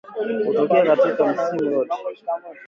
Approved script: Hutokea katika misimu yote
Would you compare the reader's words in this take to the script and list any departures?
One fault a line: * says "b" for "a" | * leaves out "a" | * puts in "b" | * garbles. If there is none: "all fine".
all fine